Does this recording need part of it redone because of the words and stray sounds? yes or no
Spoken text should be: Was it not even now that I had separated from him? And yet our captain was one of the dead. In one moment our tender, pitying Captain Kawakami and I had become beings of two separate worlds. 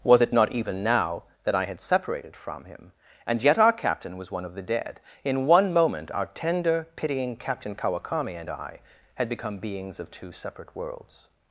no